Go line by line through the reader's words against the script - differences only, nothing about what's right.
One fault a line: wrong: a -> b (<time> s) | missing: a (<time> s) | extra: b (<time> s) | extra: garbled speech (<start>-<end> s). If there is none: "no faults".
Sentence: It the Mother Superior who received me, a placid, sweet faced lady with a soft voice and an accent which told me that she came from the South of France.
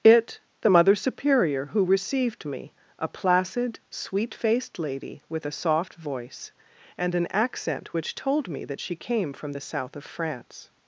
no faults